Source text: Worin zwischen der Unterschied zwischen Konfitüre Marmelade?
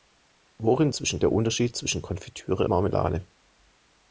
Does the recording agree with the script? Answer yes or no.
yes